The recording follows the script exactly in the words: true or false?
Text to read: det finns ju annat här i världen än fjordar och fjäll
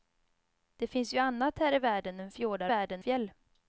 false